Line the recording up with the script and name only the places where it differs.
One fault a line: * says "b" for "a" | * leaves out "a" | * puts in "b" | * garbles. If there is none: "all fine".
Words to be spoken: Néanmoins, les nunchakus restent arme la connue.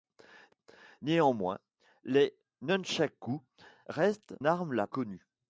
all fine